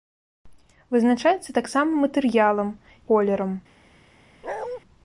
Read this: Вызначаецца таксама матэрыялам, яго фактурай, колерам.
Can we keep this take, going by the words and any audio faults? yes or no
no